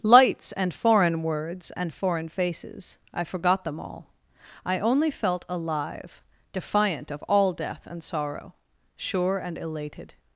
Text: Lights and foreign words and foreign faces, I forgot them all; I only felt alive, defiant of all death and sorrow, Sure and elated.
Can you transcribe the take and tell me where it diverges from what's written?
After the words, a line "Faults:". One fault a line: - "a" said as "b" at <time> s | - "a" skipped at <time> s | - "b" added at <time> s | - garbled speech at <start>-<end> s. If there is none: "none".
Lights and foreign words and foreign faces, I forgot them all; I only felt alive, defiant of all death and sorrow, Sure and elated.
Faults:
none